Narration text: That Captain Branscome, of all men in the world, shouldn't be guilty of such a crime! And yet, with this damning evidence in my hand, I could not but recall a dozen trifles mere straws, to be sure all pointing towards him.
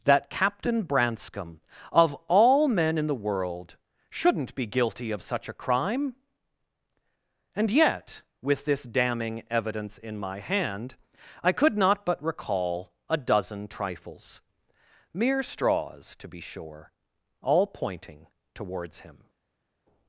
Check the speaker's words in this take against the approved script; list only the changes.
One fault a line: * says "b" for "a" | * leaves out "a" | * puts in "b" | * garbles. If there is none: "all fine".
all fine